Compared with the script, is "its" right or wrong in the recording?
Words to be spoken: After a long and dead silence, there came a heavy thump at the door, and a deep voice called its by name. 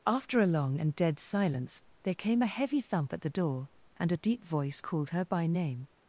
wrong